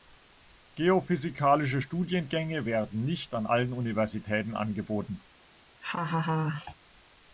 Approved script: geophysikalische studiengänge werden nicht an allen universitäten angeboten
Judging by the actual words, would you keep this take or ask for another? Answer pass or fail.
pass